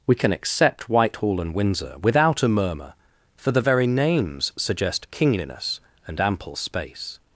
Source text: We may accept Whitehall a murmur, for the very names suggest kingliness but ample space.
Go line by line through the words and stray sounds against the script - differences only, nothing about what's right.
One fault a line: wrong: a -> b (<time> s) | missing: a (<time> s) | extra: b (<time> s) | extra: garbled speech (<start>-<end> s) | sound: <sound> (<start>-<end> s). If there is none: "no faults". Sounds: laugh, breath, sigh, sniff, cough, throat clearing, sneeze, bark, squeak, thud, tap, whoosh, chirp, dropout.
wrong: may -> can (0.1 s)
extra: and Windsor without (1.4 s)
wrong: but -> and (6.1 s)